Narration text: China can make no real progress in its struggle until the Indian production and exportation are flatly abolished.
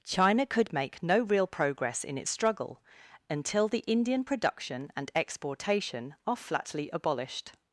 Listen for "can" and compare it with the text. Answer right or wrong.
wrong